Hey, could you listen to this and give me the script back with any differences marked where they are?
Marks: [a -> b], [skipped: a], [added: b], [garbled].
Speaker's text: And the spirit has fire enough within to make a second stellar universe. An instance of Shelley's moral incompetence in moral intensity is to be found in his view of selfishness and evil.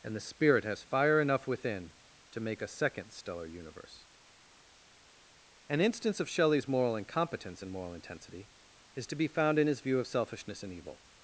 And the spirit has fire enough within to make a second stellar universe. An instance of Shelley's moral incompetence in moral intensity is to be found in his view of selfishness and evil.